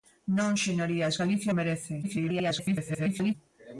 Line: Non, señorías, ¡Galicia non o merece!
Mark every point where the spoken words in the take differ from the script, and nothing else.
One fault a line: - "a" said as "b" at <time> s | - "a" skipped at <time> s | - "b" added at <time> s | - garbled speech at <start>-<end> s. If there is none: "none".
- "non" skipped at 1.5 s
- garbled speech at 2.0-3.3 s